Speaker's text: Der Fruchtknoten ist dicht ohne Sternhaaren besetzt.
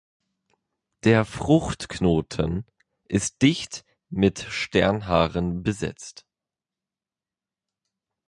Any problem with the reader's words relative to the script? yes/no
yes